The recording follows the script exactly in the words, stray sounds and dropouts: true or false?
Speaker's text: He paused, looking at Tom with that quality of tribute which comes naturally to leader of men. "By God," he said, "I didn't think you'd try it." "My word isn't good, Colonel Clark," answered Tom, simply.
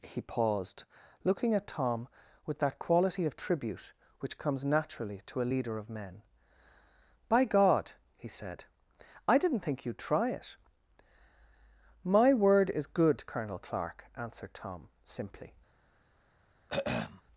false